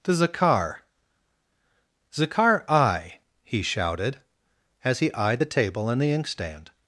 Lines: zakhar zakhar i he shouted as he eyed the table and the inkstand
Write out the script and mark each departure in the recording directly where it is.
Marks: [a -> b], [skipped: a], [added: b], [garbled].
[added: to] zakhar zakhar i he shouted as he eyed the table and the inkstand